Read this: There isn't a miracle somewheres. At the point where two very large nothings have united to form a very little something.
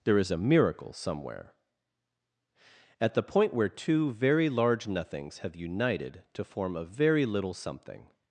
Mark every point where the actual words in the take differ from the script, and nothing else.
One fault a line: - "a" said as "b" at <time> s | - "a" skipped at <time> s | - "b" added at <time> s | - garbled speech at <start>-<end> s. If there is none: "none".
- "isn't" said as "is" at 0.2 s
- "somewheres" said as "somewhere" at 0.9 s